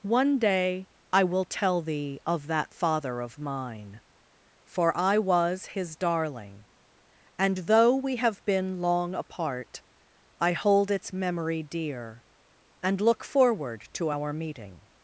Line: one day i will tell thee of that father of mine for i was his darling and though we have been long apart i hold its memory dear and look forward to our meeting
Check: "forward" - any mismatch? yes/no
no